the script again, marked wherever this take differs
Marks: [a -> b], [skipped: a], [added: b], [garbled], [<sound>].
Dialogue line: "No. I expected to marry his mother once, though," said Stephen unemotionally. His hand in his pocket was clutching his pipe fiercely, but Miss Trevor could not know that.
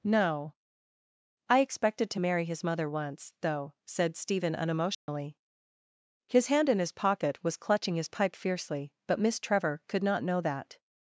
"No. I expected to marry his mother once, though," said Stephen unemotionally. [dropout] His hand in his pocket was clutching his pipe fiercely, but Miss Trevor could not know that.